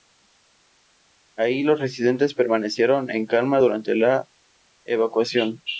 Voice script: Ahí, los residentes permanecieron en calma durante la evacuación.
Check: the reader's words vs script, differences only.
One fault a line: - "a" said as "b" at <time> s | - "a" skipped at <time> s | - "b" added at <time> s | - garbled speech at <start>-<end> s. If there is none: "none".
none